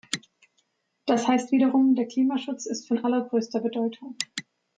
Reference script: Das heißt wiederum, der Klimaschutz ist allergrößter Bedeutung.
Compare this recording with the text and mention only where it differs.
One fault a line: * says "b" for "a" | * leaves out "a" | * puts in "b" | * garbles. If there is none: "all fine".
* puts in "von"